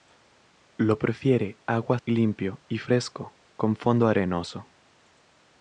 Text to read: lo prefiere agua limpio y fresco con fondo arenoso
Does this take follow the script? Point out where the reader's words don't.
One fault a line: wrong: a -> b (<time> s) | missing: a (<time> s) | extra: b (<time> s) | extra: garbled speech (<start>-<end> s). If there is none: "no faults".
no faults